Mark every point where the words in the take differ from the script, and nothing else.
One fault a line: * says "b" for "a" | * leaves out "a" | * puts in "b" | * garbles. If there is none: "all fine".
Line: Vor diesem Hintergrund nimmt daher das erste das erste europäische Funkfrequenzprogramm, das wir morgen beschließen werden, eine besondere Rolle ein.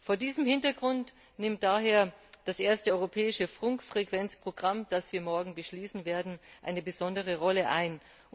* leaves out "das erste"